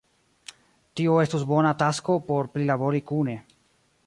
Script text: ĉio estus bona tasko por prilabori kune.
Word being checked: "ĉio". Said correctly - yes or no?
no